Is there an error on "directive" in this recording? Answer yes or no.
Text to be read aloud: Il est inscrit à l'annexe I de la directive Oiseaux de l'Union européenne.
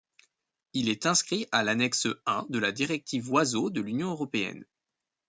no